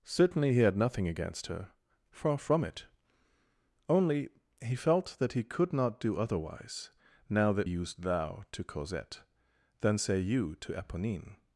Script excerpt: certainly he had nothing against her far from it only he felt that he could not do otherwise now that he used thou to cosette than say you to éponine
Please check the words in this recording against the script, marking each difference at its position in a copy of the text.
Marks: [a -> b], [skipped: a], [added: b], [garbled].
certainly he had nothing against her far from it only he felt that he could not do otherwise now that [skipped: he] used thou to cosette than say you to éponine